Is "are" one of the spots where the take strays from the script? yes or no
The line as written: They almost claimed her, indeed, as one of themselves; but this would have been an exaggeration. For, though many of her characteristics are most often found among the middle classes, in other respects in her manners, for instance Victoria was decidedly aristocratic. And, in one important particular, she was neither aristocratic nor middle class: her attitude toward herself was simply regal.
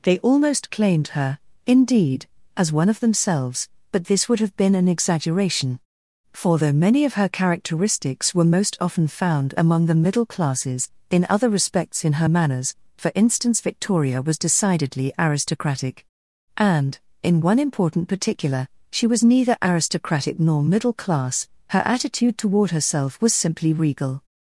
yes